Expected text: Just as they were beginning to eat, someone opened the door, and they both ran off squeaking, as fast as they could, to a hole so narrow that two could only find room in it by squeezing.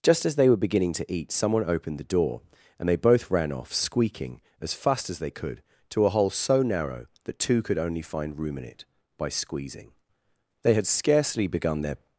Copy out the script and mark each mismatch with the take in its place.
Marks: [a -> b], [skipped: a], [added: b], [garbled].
Just as they were beginning to eat, someone opened the door, and they both ran off squeaking, as fast as they could, to a hole so narrow that two could only find room in it by squeezing. [added: They had scarcely begun their]